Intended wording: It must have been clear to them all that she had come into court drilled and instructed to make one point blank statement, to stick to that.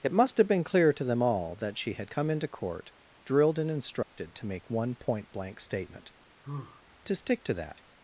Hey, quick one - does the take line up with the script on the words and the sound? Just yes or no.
no